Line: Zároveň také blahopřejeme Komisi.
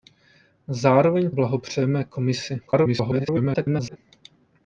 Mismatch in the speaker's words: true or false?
true